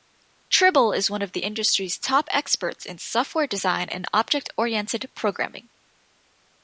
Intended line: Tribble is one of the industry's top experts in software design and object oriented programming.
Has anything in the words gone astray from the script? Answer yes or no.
no